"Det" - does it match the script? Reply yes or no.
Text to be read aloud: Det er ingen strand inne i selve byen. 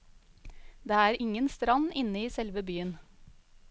yes